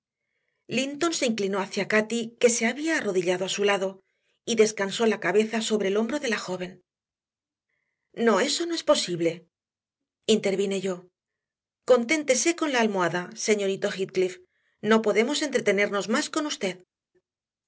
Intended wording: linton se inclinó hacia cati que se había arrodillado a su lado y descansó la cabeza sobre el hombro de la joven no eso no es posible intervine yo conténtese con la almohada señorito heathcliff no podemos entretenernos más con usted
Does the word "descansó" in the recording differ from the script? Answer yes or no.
no